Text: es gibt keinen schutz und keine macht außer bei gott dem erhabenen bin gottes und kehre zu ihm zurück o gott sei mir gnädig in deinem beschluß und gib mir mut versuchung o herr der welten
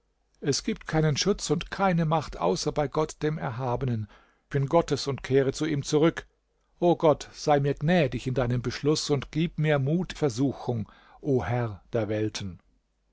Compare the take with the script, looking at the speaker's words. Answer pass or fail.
pass